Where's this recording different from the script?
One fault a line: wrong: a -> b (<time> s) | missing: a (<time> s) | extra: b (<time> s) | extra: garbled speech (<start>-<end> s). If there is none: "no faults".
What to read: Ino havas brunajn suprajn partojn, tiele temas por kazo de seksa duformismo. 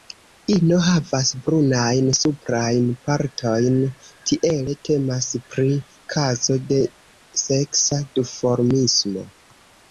wrong: por -> pri (5.5 s)